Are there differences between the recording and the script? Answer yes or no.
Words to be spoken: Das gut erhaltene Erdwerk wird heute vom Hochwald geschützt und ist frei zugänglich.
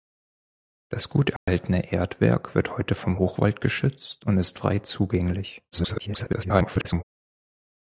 yes